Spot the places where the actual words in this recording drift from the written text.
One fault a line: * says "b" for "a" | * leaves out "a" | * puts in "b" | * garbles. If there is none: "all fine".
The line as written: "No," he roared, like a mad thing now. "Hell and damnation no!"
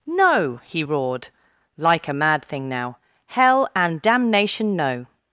all fine